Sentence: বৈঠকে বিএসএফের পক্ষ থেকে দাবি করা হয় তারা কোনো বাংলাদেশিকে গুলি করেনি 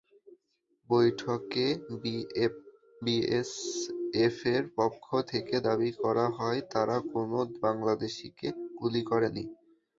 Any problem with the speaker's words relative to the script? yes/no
no